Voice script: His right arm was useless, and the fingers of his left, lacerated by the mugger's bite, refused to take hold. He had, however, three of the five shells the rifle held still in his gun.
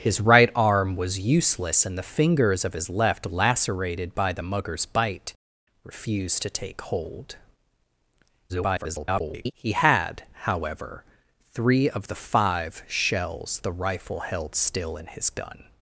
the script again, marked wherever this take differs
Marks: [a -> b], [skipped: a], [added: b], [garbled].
His right arm was useless, and the fingers of his left, lacerated by the mugger's bite, refused to take hold. [garbled] He had, however, three of the five shells the rifle held still in his gun.